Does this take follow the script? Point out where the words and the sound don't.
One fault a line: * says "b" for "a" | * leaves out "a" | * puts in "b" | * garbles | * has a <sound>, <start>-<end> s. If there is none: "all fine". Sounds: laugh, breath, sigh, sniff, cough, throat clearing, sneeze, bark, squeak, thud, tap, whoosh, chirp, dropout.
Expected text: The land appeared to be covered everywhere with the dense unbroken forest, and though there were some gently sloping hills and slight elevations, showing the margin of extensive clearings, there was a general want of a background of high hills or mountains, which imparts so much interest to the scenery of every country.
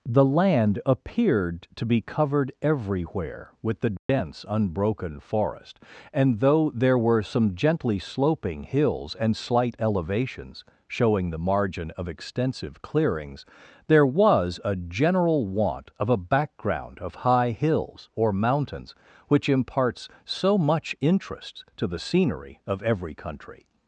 * has a dropout, 4.0-4.1 s